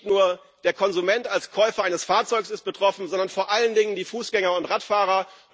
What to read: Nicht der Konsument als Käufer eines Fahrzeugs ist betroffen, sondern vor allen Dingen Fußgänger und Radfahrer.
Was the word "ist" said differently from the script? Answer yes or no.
no